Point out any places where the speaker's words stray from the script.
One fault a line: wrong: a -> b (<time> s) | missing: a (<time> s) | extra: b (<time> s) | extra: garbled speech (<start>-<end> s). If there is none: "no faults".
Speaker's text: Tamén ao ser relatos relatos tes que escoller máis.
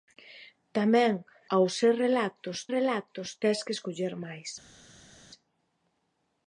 no faults